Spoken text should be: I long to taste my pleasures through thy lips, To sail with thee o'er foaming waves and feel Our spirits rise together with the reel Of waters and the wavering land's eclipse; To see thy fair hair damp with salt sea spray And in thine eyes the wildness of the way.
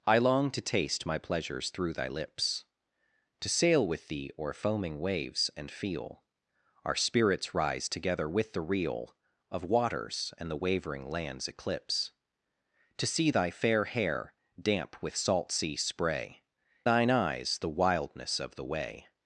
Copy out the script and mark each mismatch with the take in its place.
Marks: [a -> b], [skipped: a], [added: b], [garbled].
I long to taste my pleasures through thy lips, To sail with thee o'er foaming waves and feel Our spirits rise together with the reel Of waters and the wavering land's eclipse; To see thy fair hair damp with salt sea spray [skipped: And in] thine eyes the wildness of the way.